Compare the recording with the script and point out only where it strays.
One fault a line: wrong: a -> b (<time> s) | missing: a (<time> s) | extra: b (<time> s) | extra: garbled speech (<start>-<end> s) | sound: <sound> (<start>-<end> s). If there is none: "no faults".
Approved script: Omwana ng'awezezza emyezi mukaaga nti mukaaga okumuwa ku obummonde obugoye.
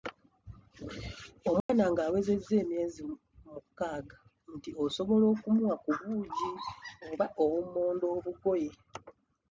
sound: dropout (1.6-1.7 s)
wrong: mukaaga -> osobola (4.8 s)
extra: buugi oba (6.0 s)